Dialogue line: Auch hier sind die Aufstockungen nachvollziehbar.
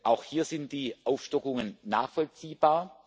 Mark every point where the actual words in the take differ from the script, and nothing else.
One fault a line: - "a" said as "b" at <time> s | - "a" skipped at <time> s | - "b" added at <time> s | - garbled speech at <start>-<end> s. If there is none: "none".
none